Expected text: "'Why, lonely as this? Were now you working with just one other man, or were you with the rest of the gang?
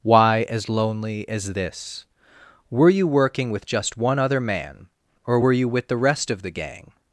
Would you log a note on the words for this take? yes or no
yes